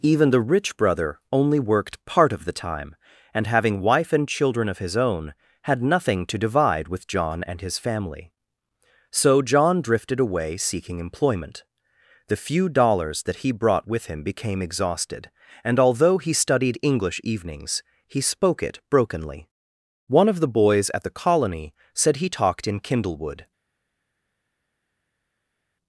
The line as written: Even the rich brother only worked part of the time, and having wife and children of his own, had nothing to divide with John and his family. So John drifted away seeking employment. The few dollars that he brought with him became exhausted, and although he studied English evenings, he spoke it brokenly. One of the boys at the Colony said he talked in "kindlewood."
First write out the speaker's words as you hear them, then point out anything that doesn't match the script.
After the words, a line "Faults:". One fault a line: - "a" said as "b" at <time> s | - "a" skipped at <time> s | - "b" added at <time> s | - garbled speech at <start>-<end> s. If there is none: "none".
Even the rich brother only worked part of the time, and having wife and children of his own, had nothing to divide with John and his family. So John drifted away seeking employment. The few dollars that he brought with him became exhausted, and although he studied English evenings, he spoke it brokenly. One of the boys at the Colony said he talked in "kindlewood."
Faults:
none